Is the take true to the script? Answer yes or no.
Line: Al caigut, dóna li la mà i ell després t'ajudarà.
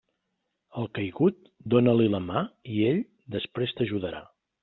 yes